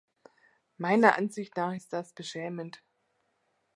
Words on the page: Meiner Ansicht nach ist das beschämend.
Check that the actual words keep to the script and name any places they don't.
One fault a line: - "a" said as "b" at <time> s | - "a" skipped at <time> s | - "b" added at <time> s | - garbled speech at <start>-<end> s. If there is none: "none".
none